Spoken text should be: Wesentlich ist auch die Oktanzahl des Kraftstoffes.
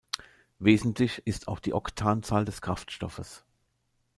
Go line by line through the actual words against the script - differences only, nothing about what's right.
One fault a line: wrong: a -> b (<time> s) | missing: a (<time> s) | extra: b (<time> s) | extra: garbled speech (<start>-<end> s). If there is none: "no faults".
no faults